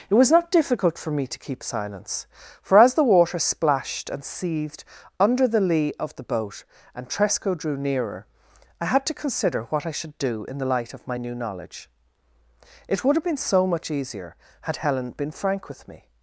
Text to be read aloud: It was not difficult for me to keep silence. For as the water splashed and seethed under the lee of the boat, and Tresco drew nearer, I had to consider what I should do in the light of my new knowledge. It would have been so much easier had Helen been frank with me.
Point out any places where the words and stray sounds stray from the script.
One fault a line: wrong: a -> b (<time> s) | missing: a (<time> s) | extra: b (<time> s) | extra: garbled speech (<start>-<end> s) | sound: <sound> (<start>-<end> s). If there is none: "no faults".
no faults